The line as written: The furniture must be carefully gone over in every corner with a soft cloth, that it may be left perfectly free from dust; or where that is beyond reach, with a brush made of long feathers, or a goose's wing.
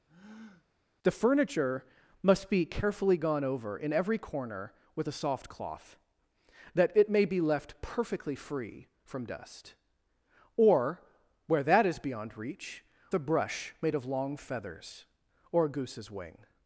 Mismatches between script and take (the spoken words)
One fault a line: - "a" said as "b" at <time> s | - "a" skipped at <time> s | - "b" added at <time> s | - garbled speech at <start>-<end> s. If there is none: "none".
- "with" skipped at 12.8 s